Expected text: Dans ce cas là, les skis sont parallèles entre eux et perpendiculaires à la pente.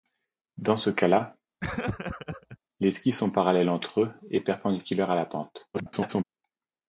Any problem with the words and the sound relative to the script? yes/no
yes